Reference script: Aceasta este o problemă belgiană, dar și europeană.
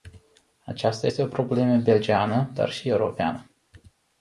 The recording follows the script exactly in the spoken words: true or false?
true